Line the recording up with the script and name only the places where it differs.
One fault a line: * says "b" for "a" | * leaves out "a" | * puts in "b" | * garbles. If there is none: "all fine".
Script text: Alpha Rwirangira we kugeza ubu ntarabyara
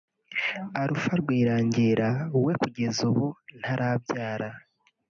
all fine